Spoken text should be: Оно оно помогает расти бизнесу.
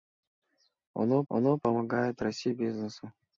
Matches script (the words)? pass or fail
pass